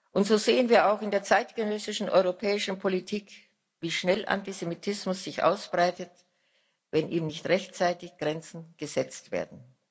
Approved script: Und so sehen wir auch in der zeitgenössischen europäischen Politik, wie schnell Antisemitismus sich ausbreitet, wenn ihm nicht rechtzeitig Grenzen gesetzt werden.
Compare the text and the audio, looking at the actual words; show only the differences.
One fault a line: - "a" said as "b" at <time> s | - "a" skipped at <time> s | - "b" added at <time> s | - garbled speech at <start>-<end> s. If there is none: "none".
none